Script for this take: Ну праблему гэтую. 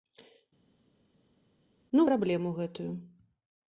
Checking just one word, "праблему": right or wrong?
right